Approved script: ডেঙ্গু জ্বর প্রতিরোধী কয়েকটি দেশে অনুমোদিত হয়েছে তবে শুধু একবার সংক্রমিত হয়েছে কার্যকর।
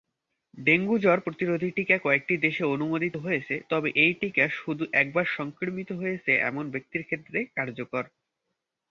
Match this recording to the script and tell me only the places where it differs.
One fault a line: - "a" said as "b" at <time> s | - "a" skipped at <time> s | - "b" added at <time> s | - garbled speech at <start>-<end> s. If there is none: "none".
- "টিকা" added at 1.8 s
- "এই টিকা" added at 4.0 s
- "এমন ব্যক্তির ক্ষেত্রে" added at 6.5 s